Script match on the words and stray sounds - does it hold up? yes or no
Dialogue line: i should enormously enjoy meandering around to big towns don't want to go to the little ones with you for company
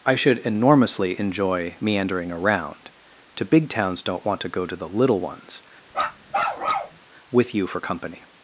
no